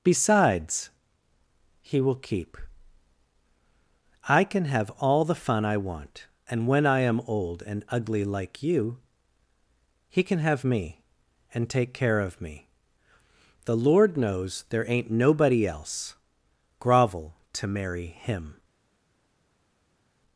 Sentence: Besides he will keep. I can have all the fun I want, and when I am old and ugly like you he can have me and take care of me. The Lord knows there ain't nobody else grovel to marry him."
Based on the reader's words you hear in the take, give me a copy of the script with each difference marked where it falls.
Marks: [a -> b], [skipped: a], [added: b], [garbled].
Besides he will keep. I can have all the fun I want, and when I am old and ugly like you he can have me and take care of me. The Lord knows there ain't nobody else grovel to marry him."